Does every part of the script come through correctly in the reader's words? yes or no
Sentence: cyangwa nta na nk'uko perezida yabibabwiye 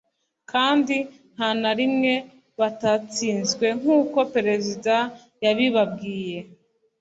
no